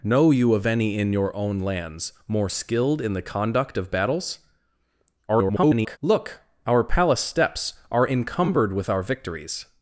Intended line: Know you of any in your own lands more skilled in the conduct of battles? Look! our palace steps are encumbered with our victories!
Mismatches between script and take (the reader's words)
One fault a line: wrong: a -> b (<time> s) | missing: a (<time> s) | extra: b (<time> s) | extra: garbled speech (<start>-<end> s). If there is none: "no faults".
extra: garbled speech (5.3-6.0 s)